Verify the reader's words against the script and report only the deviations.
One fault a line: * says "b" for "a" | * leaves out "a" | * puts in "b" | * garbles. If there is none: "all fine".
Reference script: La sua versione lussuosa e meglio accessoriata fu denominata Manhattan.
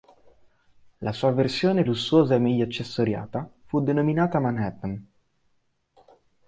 all fine